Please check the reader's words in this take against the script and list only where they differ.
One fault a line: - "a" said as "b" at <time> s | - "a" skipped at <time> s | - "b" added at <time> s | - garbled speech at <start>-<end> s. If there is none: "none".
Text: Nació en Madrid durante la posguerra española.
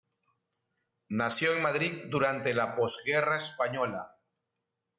none